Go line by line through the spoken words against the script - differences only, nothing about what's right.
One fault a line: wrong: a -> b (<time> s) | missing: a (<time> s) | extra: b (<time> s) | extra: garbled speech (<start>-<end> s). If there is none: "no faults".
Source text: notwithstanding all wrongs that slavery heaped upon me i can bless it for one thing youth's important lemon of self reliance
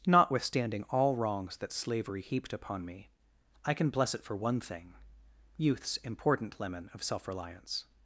no faults